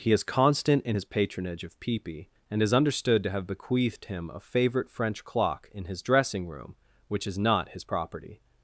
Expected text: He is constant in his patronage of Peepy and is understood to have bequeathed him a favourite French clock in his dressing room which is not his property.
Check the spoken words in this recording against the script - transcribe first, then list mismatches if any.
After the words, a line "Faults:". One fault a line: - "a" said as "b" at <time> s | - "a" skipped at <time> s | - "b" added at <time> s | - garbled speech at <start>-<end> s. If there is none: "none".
He is constant in his patronage of Peepy and is understood to have bequeathed him a favourite French clock in his dressing room which is not his property.
Faults:
none